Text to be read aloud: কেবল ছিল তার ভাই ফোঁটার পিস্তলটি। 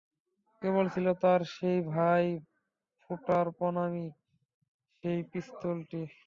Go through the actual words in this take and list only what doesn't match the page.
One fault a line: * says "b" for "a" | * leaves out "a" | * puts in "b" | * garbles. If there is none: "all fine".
* puts in "সেই"
* puts in "প্রণামী সেই"